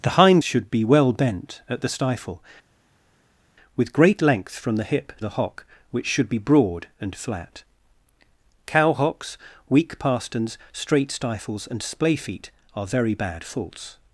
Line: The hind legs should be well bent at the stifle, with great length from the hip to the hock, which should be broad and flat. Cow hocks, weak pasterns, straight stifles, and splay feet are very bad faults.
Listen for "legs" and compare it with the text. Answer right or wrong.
wrong